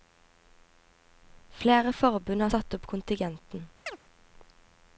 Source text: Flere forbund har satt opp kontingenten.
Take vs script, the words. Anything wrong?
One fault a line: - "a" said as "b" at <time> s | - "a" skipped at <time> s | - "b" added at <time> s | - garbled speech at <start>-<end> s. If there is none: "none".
none